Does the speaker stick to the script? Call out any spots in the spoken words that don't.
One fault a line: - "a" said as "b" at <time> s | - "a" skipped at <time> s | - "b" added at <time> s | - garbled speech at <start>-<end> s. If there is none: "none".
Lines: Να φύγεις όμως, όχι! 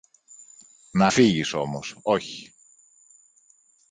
none